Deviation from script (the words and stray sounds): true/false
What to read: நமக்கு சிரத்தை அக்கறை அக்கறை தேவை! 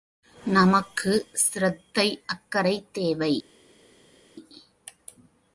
true